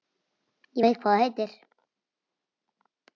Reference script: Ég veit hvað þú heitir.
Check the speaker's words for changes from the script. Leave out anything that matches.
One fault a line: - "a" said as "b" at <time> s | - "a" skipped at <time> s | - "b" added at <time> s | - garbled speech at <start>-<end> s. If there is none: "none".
none